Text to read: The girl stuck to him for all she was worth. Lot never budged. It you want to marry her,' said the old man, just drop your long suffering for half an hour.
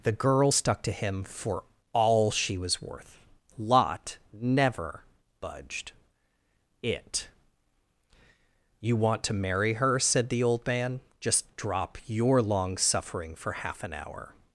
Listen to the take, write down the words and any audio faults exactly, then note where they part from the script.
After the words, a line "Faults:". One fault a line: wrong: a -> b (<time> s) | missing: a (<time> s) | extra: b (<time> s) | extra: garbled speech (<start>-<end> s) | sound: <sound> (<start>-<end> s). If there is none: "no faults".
The girl stuck to him for all she was worth. Lot never budged. It you want to marry her,' said the old man, just drop your long suffering for half an hour.
Faults:
no faults